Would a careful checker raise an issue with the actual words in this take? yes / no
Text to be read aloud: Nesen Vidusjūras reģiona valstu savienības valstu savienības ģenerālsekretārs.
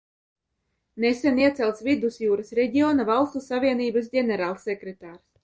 yes